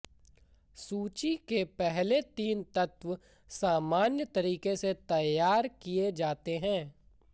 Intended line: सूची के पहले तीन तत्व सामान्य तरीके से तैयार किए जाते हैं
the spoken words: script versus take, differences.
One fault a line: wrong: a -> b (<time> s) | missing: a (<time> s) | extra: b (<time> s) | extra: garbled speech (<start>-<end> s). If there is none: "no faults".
no faults